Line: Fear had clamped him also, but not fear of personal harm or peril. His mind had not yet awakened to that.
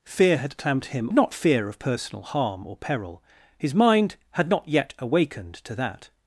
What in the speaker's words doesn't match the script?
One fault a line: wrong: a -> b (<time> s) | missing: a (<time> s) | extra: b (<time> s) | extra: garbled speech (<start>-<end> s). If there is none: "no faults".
missing: also but (1.1 s)